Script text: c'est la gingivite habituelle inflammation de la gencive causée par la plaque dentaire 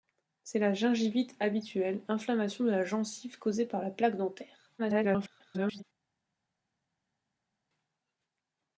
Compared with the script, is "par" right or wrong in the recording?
right